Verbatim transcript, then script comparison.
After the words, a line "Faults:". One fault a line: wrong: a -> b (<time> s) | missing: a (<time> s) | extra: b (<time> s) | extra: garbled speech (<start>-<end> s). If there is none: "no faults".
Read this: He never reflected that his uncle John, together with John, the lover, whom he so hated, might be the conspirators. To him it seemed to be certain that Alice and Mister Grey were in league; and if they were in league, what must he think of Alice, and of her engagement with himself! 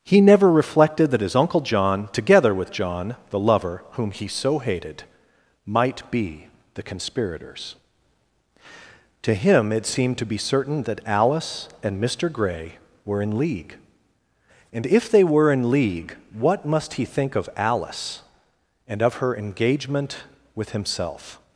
He never reflected that his uncle John, together with John, the lover, whom he so hated, might be the conspirators. To him it seemed to be certain that Alice and Mister Grey were in league; and if they were in league, what must he think of Alice, and of her engagement with himself!
Faults:
no faults